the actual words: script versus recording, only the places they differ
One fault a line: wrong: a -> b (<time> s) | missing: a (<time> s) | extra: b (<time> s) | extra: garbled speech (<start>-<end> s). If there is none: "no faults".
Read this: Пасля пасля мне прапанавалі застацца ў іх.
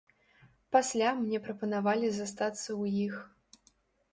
missing: пасля (1.1 s)